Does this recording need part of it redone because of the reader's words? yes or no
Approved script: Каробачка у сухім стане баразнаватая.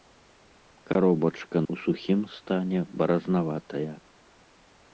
no